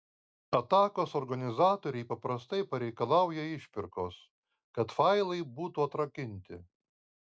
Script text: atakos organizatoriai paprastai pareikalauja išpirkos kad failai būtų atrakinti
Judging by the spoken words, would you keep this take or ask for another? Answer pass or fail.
pass